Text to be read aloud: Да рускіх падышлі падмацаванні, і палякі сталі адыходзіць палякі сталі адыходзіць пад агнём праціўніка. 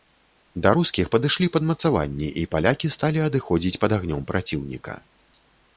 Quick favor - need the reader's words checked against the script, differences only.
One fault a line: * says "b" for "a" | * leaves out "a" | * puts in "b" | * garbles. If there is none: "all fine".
* leaves out "палякі сталі адыходзіць"